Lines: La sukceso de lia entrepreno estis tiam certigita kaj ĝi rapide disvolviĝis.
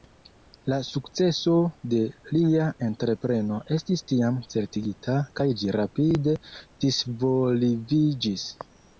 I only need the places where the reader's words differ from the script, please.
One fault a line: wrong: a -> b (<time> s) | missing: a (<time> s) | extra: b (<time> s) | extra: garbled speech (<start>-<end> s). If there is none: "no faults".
no faults